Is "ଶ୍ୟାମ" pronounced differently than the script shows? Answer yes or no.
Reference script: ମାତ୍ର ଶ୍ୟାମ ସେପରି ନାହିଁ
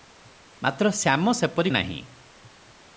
no